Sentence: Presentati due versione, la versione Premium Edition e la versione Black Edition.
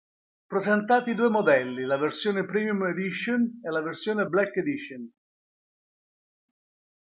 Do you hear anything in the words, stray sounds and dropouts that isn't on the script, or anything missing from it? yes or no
yes